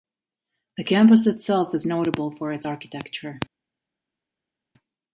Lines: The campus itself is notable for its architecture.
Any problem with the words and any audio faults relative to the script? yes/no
no